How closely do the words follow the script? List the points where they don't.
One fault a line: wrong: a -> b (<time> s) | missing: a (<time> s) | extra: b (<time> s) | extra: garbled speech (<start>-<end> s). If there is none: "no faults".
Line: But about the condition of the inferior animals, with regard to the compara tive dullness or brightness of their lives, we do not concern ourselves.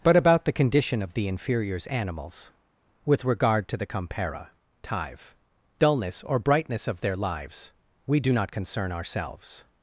wrong: inferior -> inferiors (1.3 s)